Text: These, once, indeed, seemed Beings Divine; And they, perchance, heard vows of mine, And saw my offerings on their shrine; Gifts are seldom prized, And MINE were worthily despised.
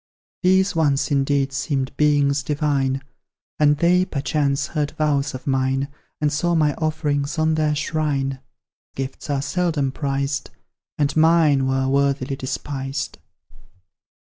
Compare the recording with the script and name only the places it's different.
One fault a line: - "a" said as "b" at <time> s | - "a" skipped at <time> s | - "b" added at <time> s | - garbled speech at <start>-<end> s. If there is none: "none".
none